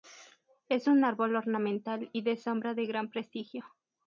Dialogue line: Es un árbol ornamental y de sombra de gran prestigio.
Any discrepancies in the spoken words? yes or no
no